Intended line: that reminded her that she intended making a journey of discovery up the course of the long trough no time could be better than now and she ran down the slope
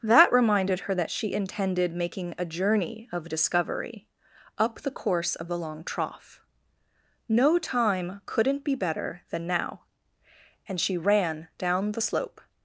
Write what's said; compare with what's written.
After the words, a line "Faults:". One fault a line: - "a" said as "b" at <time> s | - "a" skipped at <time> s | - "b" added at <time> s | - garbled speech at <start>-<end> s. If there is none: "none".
that reminded her that she intended making a journey of discovery up the course of the long trough no time couldn't be better than now and she ran down the slope
Faults:
- "could" said as "couldn't" at 8.3 s